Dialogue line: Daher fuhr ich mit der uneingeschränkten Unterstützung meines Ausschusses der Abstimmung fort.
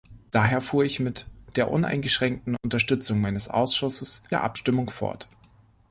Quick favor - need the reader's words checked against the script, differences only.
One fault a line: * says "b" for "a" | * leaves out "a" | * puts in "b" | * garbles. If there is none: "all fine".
all fine